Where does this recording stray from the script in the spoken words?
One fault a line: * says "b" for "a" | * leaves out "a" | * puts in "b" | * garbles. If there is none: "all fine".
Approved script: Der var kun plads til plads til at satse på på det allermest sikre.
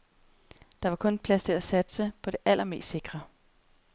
* leaves out "plads til"
* leaves out "på"